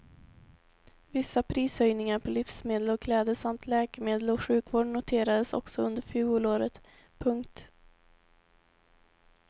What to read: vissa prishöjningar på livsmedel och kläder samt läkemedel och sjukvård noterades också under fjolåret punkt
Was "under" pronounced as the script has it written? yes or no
yes